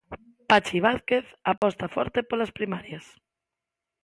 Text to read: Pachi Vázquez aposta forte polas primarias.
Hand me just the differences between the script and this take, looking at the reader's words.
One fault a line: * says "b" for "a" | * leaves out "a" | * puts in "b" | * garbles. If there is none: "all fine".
all fine